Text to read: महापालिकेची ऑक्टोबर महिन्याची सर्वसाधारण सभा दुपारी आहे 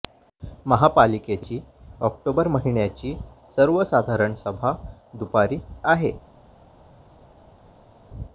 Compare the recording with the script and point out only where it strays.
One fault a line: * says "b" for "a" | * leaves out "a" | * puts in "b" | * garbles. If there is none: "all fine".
all fine